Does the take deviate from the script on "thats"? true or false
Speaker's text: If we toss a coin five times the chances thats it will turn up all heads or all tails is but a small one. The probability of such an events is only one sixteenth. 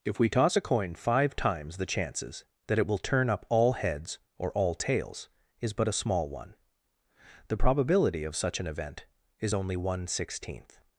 true